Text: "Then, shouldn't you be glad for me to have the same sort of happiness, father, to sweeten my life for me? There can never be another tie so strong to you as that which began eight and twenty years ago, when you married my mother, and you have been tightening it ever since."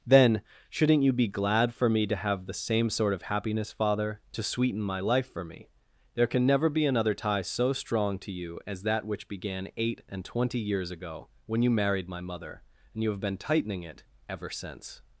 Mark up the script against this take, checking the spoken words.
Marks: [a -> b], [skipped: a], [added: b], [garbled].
"Then, shouldn't you be glad for me to have the same sort of happiness, father, to sweeten my life for me? There can never be another tie so strong to you as that which began eight and twenty years ago, when you married my mother, and you have been tightening it ever since."